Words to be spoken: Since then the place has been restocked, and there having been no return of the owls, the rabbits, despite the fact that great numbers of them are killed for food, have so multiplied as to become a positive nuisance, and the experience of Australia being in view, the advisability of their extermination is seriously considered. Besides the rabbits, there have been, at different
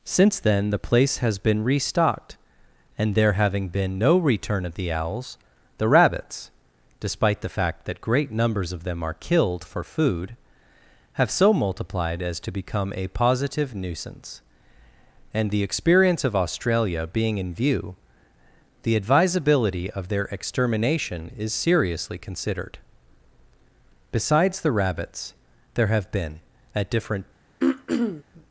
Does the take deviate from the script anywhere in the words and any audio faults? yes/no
yes